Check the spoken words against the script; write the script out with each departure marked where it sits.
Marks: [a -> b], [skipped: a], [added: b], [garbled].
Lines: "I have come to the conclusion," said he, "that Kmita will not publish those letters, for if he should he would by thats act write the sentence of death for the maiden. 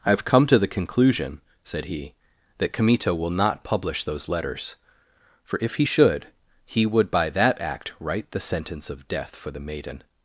"I have come to the conclusion," said he, "that Kmita will not publish those letters, for if he should he would by [thats -> that] act write the sentence of death for the maiden.